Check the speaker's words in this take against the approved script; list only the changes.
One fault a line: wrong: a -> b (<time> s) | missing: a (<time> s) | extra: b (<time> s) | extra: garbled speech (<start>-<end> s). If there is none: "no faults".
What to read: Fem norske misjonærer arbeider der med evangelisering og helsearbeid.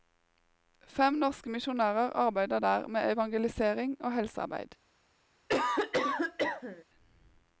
no faults